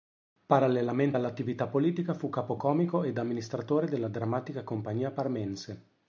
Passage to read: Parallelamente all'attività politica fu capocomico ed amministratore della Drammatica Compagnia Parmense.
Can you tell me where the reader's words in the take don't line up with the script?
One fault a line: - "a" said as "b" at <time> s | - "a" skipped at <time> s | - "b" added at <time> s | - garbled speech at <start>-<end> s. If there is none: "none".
none